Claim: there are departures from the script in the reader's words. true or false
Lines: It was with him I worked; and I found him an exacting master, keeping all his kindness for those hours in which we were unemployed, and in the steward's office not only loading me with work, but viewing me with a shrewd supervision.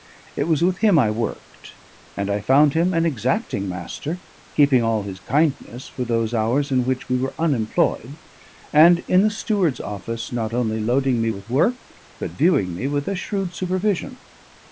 false